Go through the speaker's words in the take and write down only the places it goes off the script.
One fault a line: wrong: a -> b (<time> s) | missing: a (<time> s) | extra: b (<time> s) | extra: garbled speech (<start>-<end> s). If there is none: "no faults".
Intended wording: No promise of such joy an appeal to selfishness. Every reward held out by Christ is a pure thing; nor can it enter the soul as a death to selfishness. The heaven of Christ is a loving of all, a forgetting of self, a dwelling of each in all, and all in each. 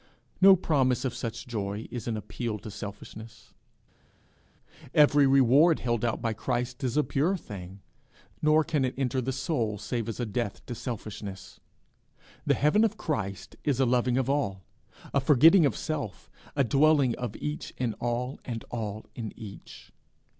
extra: is (1.9 s)
extra: save (9.8 s)